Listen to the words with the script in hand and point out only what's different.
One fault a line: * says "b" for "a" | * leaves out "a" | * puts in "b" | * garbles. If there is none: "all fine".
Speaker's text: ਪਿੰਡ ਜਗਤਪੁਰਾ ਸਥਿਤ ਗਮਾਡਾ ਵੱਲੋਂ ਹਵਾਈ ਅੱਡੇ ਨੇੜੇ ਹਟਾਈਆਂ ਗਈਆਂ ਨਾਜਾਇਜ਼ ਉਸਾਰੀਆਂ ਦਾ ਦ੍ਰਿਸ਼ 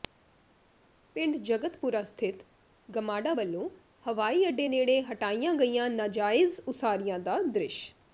all fine